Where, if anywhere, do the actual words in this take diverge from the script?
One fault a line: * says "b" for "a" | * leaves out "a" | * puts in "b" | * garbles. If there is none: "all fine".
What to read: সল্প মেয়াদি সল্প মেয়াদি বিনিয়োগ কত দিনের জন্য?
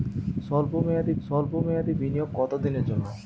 all fine